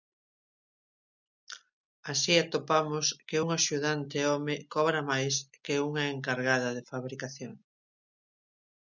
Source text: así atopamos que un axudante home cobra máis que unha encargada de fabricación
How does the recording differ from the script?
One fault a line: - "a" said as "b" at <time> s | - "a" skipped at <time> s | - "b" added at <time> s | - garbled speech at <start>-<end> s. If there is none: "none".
none